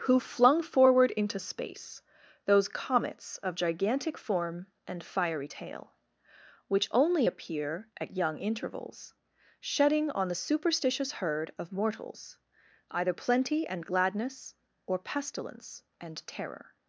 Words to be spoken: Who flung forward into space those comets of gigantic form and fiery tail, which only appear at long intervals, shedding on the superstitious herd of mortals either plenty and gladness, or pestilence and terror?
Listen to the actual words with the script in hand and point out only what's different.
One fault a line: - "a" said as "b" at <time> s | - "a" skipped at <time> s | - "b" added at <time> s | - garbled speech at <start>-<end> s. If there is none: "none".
- "long" said as "young" at 8.1 s